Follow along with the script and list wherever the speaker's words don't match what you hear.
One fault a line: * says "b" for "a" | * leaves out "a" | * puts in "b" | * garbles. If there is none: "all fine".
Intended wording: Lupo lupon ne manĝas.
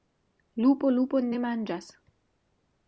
all fine